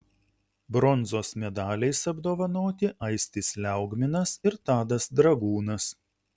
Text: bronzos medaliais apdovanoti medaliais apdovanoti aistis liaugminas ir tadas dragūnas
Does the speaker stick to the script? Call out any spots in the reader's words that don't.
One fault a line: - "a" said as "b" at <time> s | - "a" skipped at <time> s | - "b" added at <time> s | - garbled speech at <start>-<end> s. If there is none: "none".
- "medaliais apdovanoti" skipped at 2.9 s